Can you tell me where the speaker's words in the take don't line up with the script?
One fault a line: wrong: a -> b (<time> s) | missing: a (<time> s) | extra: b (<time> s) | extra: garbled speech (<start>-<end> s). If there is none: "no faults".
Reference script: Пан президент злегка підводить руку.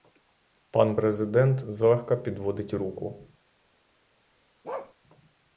no faults